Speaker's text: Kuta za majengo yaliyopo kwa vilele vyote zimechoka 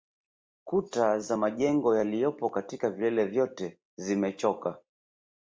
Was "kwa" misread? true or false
true